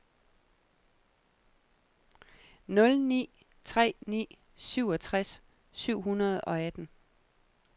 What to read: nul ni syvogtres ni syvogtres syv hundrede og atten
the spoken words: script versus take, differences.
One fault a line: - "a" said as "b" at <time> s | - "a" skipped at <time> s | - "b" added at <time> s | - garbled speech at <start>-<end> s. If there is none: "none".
- "syvogtres" said as "tre" at 3.6 s